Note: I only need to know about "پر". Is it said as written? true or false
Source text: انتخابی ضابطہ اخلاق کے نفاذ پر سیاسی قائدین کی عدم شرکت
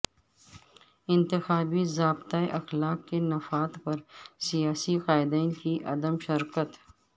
true